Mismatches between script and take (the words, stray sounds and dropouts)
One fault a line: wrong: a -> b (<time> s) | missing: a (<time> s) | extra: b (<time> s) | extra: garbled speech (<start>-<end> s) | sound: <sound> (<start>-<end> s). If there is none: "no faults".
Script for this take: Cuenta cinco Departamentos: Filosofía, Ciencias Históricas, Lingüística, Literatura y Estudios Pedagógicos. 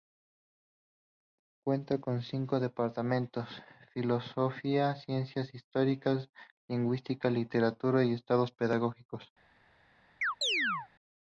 extra: con (2.0 s)
sound: chirp (10.2-10.9 s)